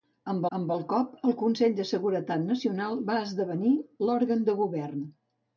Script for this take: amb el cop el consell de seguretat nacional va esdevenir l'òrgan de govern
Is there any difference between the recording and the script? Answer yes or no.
yes